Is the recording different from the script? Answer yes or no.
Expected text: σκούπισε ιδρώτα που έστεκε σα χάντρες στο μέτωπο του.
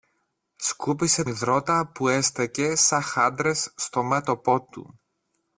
no